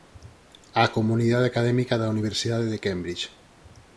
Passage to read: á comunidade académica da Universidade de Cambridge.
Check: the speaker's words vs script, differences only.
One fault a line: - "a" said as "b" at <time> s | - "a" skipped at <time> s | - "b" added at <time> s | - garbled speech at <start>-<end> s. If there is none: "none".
none